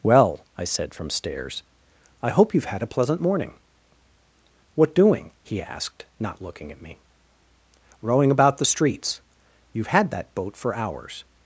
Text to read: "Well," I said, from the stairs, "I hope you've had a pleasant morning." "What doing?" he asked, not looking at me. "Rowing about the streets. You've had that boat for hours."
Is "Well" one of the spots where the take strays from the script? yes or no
no